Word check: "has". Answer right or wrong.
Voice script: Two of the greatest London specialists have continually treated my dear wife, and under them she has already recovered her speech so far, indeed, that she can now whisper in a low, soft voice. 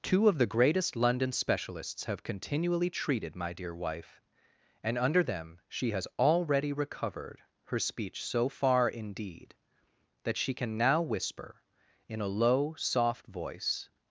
right